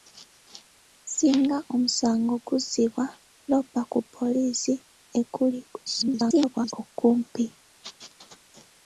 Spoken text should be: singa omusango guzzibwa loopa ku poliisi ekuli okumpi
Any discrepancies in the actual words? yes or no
yes